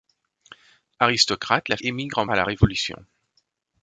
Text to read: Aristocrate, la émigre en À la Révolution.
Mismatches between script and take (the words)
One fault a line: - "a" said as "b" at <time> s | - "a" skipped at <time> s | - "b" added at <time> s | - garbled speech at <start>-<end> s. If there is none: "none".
none